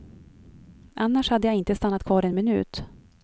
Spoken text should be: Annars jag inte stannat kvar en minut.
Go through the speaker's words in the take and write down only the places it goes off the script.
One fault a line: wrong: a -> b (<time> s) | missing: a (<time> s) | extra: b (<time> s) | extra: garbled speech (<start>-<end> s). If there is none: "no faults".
extra: hade (1.3 s)